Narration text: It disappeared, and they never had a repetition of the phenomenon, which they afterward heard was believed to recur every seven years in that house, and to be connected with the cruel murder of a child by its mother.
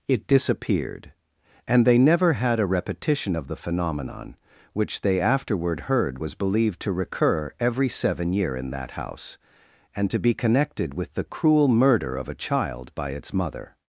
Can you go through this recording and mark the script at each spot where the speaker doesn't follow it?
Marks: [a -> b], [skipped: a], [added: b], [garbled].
It disappeared, and they never had a repetition of the phenomenon, which they afterward heard was believed to recur every seven [years -> year] in that house, and to be connected with the cruel murder of a child by its mother.